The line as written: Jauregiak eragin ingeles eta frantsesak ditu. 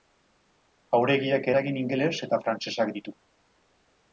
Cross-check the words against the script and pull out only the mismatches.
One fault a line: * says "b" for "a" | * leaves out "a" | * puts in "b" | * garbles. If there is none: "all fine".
all fine